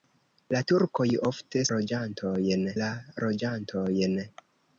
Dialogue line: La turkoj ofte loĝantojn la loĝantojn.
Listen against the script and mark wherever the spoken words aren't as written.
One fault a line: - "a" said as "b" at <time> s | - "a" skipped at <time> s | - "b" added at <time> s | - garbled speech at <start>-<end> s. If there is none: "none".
none